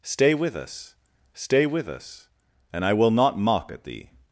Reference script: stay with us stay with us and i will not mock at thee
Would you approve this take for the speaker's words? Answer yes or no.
yes